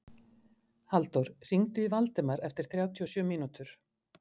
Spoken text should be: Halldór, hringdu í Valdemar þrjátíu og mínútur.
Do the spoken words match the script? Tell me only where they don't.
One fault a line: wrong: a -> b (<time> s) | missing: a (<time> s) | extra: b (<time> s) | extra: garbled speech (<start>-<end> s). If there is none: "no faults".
extra: eftir (2.5 s)
extra: sjö (3.2 s)